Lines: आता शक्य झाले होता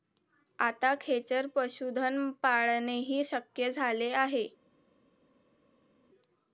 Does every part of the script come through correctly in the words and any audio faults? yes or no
no